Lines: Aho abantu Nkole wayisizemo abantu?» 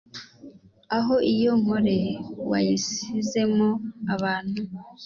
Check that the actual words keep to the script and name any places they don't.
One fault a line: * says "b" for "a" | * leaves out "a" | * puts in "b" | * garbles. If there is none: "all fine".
* says "iyo" for "abantu"